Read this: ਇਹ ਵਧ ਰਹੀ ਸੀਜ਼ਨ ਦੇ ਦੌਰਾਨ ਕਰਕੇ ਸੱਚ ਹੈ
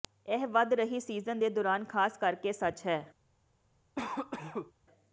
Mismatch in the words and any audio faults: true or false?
true